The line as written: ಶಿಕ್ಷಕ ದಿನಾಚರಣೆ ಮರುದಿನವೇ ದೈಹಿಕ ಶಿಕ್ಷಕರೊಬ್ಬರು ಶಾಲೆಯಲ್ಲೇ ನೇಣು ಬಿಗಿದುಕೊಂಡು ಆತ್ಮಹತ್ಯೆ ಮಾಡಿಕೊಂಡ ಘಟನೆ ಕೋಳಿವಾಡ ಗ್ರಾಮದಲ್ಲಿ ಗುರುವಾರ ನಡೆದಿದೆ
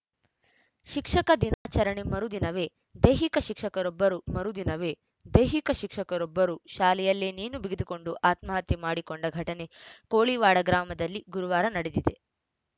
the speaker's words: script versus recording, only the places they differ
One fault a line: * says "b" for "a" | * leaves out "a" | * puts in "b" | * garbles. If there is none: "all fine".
* puts in "ಮರುದಿನವೇ ದೈಹಿಕ ಶಿಕ್ಷಕರೊಬ್ಬರು"